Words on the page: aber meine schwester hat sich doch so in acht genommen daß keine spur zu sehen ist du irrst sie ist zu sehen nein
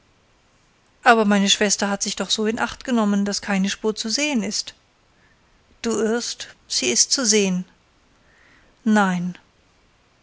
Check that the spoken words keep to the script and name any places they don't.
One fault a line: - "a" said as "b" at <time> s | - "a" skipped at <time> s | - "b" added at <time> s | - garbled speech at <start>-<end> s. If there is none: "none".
none